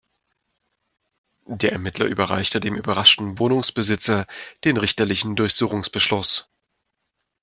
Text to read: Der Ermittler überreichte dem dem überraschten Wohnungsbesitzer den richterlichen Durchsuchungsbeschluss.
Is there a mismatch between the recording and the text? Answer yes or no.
yes